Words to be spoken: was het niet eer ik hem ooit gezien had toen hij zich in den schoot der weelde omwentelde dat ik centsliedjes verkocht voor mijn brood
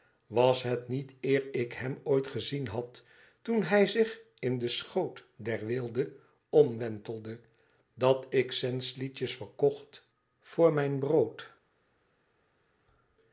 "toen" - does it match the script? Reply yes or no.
yes